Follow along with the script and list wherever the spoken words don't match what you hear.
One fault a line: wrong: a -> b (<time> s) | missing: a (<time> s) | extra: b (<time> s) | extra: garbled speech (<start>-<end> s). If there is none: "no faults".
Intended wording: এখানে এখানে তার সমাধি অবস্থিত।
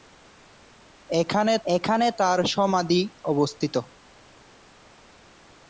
no faults